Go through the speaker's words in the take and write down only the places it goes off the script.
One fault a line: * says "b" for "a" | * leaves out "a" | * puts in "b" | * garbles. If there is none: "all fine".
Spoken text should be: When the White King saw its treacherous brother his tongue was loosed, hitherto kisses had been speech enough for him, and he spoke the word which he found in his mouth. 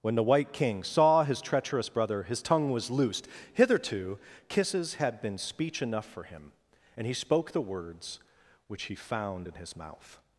* says "his" for "its"
* says "words" for "word"